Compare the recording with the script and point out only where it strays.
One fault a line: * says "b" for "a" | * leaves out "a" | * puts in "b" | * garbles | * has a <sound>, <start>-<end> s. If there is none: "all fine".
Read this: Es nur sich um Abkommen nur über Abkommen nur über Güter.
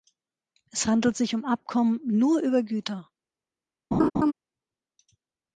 * says "handelt" for "nur"
* leaves out "Abkommen nur über"
* has a laugh, 3.9-4.3 s